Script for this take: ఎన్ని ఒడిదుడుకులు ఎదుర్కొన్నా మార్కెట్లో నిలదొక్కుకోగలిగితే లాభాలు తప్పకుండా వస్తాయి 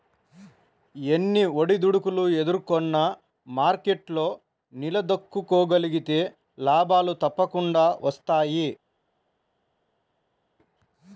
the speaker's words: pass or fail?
pass